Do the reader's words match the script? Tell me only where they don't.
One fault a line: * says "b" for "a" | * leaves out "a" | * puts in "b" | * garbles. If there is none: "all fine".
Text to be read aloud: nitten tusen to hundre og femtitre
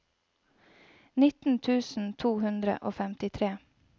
all fine